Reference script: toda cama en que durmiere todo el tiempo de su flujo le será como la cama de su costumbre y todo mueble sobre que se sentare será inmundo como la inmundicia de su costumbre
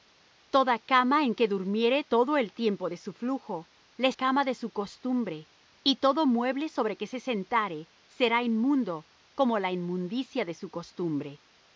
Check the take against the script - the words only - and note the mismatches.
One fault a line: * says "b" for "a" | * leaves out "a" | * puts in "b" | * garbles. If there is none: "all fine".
* leaves out "será como la"